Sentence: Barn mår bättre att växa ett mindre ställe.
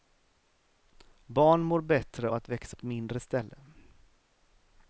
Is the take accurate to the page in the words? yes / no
yes